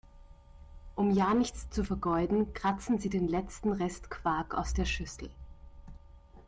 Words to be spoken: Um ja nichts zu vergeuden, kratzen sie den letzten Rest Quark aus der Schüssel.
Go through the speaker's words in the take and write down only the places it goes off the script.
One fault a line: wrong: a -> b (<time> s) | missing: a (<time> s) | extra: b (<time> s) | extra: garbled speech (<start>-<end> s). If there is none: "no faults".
no faults